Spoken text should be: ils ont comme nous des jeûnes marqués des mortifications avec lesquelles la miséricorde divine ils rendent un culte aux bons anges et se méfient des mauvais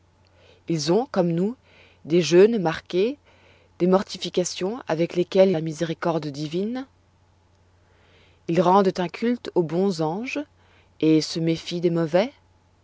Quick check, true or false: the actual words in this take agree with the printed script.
true